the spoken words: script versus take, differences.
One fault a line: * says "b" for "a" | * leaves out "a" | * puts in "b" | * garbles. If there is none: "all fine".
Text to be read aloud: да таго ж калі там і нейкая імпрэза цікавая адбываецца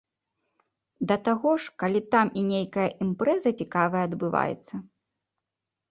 all fine